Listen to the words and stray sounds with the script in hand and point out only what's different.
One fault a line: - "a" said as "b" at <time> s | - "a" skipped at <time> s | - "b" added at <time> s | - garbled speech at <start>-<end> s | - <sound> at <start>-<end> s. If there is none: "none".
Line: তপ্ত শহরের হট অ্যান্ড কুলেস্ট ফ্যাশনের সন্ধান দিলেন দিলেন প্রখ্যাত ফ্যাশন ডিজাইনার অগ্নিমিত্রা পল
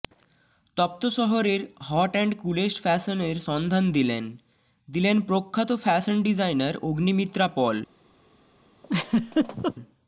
- laugh at 8.8-9.8 s